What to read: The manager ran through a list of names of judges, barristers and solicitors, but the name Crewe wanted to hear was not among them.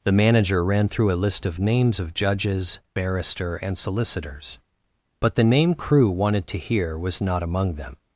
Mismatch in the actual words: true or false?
true